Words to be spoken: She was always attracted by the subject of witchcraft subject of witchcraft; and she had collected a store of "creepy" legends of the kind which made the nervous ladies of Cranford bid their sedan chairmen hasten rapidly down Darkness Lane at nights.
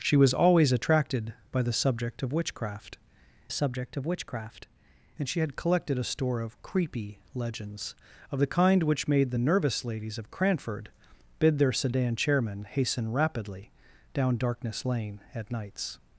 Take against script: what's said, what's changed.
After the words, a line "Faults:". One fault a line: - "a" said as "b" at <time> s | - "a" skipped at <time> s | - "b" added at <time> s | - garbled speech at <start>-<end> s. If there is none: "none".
She was always attracted by the subject of witchcraft subject of witchcraft; and she had collected a store of "creepy" legends of the kind which made the nervous ladies of Cranford bid their sedan chairmen hasten rapidly down Darkness Lane at nights.
Faults:
none